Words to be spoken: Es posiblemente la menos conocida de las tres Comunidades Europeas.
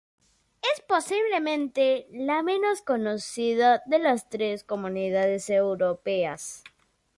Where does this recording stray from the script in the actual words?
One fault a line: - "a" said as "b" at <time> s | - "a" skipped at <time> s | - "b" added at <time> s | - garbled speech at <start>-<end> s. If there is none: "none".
none